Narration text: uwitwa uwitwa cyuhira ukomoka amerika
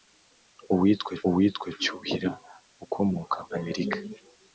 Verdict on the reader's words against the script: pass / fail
pass